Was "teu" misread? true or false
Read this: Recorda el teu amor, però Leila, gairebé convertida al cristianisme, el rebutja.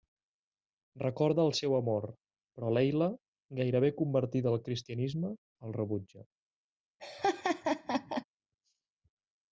true